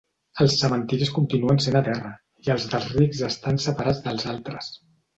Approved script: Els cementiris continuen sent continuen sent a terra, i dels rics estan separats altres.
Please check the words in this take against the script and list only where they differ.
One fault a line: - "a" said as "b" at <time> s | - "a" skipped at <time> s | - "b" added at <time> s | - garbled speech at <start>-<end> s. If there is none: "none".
- "continuen sent" skipped at 1.8 s
- "els" added at 2.6 s
- "dels" added at 4.1 s